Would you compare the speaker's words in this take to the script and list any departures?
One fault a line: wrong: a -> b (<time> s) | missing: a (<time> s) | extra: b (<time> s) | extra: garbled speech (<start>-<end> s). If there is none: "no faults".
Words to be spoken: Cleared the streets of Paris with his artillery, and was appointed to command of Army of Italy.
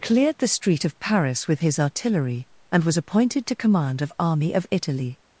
wrong: streets -> street (0.5 s)